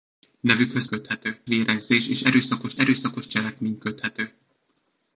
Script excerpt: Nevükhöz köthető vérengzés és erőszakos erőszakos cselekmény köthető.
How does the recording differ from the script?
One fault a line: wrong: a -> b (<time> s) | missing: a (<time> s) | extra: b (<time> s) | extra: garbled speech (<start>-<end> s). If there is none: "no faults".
no faults